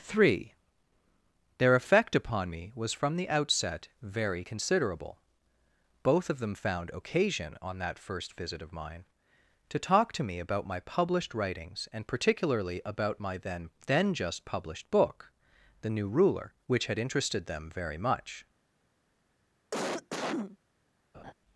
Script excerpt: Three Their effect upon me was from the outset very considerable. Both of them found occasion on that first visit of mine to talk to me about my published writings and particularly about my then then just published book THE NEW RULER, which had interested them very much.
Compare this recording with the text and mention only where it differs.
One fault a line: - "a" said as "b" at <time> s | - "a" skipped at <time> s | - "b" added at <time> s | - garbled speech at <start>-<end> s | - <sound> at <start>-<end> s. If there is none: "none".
- cough at 19.7-20.6 s
- laugh at 21.1-21.3 s